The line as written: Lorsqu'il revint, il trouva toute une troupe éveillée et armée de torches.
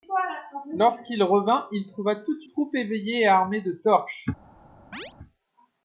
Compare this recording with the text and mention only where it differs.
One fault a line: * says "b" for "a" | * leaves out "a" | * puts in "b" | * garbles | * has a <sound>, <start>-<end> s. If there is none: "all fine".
* leaves out "une"
* has a chirp, 4.9-5.1 s